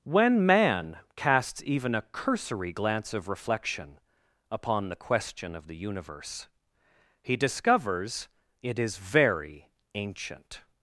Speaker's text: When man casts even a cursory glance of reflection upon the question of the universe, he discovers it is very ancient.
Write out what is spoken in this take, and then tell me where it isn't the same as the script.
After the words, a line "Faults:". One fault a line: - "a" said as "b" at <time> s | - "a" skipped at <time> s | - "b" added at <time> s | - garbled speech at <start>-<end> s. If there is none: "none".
When man casts even a cursory glance of reflection upon the question of the universe, he discovers it is very ancient.
Faults:
none